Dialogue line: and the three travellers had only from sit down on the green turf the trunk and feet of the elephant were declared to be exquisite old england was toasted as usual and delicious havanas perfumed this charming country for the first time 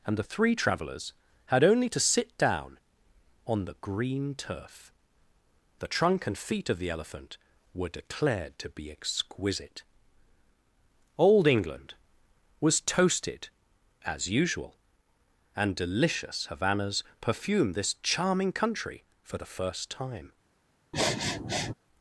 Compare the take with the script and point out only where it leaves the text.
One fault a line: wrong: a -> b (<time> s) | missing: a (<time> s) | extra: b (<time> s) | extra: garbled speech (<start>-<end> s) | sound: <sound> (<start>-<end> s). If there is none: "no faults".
wrong: from -> to (1.9 s)
sound: sniff (20.9-21.7 s)